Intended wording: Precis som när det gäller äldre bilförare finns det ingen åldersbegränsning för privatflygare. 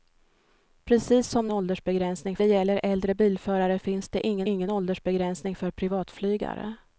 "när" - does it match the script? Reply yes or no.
no